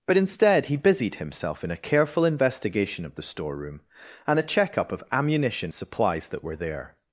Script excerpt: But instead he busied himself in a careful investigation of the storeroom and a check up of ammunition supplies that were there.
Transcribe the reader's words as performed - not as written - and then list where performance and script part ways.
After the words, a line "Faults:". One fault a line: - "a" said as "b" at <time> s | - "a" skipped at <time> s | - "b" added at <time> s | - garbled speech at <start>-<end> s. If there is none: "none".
But instead he busied himself in a careful investigation of the storeroom and a check up of ammunition supplies that were there.
Faults:
none